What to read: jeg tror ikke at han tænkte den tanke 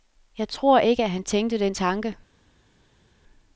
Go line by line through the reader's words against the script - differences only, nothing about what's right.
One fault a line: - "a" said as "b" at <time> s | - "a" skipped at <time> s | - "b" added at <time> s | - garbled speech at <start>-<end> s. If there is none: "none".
none